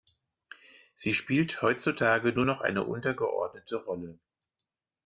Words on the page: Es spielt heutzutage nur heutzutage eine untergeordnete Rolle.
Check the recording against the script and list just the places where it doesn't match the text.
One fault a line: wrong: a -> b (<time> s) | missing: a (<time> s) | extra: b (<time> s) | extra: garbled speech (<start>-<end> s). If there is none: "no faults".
wrong: Es -> Sie (0.9 s)
wrong: heutzutage -> noch (2.4 s)